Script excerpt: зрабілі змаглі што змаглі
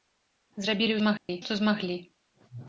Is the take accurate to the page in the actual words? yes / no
yes